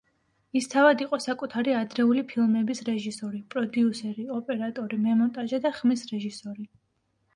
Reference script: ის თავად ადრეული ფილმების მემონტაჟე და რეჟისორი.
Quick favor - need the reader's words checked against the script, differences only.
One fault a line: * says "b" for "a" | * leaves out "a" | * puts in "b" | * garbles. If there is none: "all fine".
* puts in "იყო საკუთარი"
* puts in "რეჟისორი პროდიუსერი ოპერატორი"
* puts in "ხმის"